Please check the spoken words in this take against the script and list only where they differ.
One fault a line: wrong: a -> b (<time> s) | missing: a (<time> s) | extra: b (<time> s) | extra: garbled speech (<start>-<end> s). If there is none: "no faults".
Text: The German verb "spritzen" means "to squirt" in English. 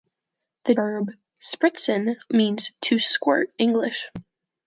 missing: German (0.7 s)
missing: in (3.5 s)